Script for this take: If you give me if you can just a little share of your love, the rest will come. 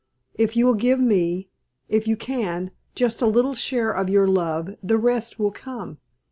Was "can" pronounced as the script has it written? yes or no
yes